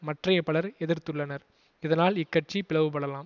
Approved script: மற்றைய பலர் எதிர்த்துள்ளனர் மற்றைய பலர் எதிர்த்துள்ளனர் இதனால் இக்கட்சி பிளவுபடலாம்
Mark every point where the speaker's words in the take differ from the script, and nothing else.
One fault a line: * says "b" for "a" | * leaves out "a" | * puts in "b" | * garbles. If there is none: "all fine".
* leaves out "மற்றைய பலர் எதிர்த்துள்ளனர்"